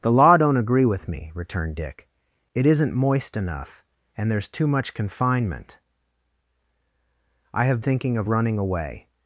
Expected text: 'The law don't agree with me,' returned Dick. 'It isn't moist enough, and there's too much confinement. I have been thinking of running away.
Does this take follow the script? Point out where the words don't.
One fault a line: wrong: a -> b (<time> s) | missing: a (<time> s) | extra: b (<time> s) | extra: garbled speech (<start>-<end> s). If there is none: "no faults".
missing: been (7.8 s)